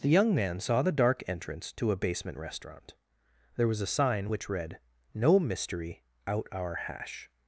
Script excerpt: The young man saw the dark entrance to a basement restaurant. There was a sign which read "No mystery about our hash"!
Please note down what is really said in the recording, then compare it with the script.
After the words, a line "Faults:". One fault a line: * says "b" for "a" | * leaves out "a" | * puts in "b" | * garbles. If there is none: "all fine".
The young man saw the dark entrance to a basement restaurant. There was a sign which read "No mystery out our hash"!
Faults:
* says "out" for "about"